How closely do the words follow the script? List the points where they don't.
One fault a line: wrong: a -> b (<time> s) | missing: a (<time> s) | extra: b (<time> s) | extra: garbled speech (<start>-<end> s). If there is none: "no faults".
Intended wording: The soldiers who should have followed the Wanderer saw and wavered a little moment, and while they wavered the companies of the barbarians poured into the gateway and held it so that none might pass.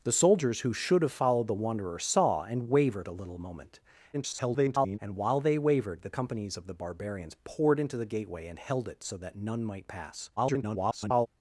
extra: garbled speech (4.1-5.0 s)
extra: garbled speech (10.4-11.3 s)